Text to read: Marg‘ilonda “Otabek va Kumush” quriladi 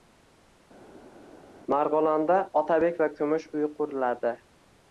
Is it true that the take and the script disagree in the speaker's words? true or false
true